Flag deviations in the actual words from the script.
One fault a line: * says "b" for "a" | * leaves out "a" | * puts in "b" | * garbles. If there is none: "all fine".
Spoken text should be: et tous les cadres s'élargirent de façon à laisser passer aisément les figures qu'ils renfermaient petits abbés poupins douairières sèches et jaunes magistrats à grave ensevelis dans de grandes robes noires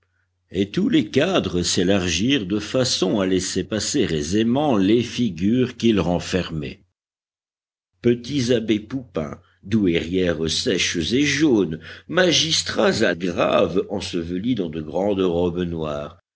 all fine